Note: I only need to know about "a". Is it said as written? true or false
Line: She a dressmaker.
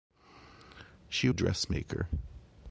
true